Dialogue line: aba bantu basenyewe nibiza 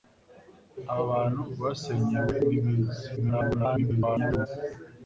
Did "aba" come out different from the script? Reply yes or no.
no